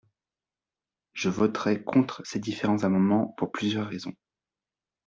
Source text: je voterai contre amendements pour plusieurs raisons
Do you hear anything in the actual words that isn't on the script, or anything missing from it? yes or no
yes